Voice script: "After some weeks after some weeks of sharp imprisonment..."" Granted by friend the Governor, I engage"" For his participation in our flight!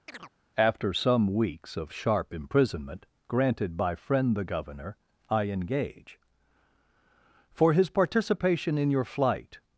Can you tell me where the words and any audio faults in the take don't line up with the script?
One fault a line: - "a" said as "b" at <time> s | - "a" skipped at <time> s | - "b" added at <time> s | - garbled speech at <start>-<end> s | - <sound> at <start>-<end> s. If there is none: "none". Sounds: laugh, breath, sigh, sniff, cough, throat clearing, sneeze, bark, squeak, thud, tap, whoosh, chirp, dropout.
- chirp at 0.1-0.3 s
- "after some weeks" skipped at 1.7 s
- "our" said as "your" at 8.9 s